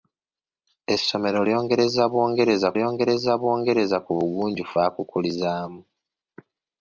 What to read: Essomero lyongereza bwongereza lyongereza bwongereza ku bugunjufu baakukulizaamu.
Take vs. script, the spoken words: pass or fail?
pass